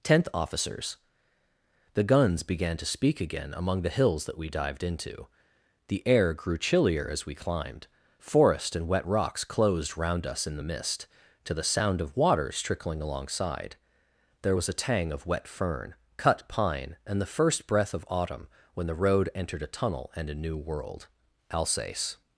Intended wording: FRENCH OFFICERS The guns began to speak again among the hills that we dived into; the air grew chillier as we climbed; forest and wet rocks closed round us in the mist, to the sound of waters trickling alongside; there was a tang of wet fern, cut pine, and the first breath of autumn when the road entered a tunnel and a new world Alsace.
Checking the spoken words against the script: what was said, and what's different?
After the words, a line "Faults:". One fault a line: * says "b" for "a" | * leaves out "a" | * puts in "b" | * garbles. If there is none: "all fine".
Tenth OFFICERS The guns began to speak again among the hills that we dived into; the air grew chillier as we climbed; forest and wet rocks closed round us in the mist, to the sound of waters trickling alongside; there was a tang of wet fern, cut pine, and the first breath of autumn when the road entered a tunnel and a new world Alsace.
Faults:
* says "Tenth" for "FRENCH"